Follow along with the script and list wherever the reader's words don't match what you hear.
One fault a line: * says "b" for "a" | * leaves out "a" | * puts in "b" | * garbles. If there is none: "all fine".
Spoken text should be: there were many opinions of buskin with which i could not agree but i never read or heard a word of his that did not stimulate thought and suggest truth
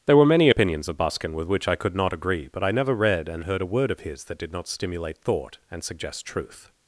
* says "and" for "or"